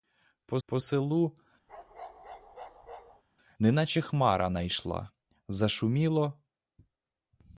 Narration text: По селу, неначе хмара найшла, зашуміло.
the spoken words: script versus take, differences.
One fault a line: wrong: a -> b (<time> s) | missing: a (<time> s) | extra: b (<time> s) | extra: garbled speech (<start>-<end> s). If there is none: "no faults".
extra: по (0.6 s)